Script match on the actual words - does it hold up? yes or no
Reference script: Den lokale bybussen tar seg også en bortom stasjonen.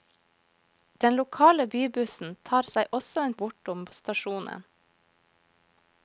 yes